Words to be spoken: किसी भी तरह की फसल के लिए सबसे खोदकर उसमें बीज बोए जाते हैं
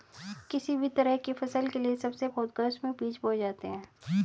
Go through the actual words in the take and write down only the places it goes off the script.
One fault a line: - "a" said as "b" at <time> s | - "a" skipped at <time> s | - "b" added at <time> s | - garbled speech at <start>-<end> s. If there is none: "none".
none